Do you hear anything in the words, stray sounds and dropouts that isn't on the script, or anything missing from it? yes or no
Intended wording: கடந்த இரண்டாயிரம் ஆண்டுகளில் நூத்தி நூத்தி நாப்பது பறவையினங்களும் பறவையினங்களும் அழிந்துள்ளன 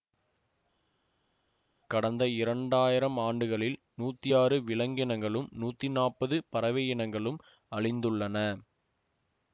yes